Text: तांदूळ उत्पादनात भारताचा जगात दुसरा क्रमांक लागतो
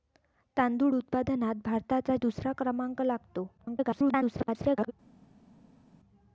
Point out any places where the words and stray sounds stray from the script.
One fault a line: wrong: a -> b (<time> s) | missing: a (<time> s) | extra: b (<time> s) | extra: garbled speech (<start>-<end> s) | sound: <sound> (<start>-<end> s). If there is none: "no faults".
missing: जगात (2.2 s)
extra: garbled speech (3.6-4.9 s)